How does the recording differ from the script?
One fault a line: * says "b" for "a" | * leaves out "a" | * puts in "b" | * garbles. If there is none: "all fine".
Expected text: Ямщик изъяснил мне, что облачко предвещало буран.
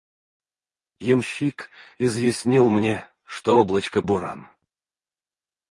* leaves out "предвещало"